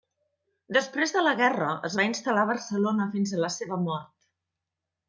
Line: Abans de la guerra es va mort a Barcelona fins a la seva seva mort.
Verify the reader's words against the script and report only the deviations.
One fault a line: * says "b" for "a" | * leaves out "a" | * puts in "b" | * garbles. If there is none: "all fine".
* says "Després" for "Abans"
* says "instal·lar" for "mort"
* leaves out "seva"